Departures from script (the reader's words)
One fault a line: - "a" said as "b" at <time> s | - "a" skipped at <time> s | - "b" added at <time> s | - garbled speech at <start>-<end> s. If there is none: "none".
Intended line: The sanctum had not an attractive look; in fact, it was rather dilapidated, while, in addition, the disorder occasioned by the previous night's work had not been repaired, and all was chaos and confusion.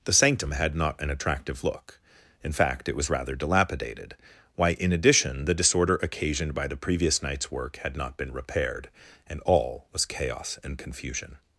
- "while" said as "why" at 4.6 s